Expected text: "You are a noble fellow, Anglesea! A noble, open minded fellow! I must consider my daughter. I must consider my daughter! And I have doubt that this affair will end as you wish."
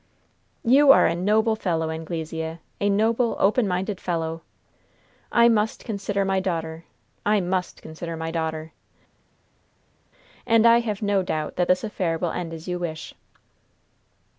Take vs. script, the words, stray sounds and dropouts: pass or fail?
fail